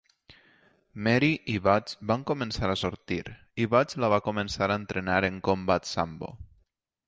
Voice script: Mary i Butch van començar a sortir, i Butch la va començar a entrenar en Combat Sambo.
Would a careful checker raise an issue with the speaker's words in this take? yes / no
no